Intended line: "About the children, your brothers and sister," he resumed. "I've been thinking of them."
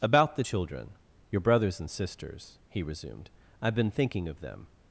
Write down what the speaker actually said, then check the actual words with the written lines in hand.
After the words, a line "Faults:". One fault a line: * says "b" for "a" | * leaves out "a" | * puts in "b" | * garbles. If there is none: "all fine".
"About the children, your brothers and sisters," he resumed. "I've been thinking of them."
Faults:
* says "sisters" for "sister"